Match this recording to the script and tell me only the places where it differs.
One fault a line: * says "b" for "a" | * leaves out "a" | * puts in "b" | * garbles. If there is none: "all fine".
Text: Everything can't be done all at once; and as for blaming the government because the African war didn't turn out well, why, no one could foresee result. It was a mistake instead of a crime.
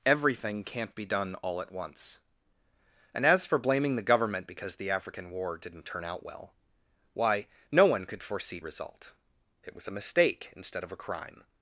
all fine